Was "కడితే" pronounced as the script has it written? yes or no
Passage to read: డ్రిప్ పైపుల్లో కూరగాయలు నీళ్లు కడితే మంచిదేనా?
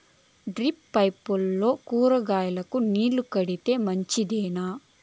yes